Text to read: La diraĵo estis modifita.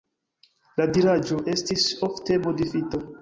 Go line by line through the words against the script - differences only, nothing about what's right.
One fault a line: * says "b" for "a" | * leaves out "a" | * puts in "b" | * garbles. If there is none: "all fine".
* puts in "ofte"